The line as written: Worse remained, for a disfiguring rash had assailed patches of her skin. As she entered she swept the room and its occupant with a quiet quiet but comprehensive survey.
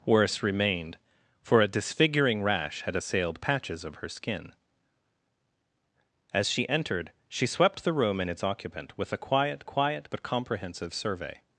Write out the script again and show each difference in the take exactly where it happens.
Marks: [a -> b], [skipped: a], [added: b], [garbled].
Worse remained, for a disfiguring rash had assailed patches of her skin. As she entered she swept the room and its occupant with a quiet quiet but comprehensive survey.